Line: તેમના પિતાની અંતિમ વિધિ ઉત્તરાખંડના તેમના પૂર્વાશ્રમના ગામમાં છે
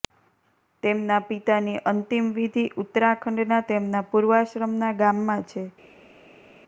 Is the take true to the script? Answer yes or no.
yes